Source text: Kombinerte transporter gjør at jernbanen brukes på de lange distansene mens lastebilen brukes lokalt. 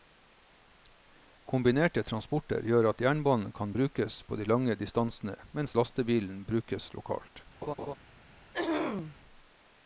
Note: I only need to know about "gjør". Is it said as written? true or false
true